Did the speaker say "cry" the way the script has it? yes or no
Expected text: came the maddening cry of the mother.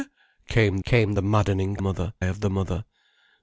no